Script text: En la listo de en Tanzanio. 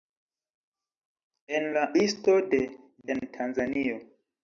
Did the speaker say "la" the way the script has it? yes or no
yes